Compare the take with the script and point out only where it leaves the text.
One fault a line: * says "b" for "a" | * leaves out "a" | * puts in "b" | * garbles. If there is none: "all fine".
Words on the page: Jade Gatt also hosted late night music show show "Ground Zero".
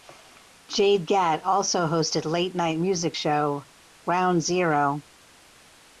* leaves out "show"